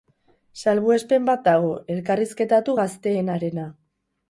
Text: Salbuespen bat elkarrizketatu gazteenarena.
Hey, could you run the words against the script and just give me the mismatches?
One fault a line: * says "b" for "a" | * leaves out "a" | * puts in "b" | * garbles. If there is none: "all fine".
* puts in "dago"